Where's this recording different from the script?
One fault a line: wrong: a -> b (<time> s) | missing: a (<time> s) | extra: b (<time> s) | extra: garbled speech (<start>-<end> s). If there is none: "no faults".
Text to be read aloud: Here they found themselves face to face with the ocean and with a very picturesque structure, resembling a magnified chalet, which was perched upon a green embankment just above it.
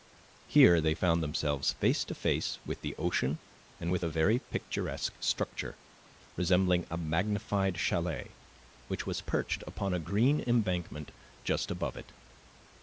no faults